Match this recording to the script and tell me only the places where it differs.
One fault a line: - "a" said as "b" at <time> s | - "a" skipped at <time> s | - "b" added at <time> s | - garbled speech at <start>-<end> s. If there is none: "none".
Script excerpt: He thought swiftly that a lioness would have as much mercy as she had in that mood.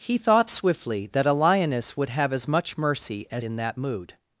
- "she had" skipped at 3.4 s